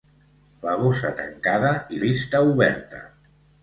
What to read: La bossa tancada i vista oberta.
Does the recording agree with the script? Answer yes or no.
yes